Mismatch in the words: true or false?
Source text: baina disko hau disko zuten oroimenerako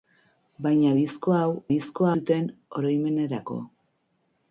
false